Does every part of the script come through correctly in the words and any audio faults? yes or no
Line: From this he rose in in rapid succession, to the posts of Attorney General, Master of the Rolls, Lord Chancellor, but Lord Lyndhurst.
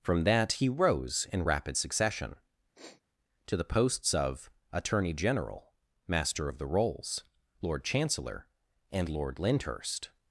no